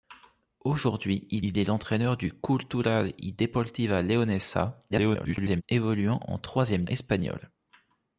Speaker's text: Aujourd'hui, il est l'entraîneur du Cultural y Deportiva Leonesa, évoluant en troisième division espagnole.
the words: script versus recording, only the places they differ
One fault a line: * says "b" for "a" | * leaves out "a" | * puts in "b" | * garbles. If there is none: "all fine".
* puts in "il"
* garbles
* leaves out "division"